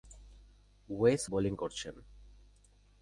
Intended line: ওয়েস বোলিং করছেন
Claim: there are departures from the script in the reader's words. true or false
false